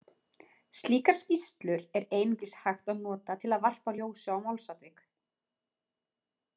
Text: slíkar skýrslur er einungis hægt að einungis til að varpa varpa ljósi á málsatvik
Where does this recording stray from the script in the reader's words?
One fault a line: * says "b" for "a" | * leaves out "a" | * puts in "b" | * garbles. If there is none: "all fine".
* says "nota" for "einungis"
* leaves out "varpa"